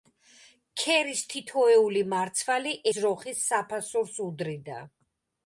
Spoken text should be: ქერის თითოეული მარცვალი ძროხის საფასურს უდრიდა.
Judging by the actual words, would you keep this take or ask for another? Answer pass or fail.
pass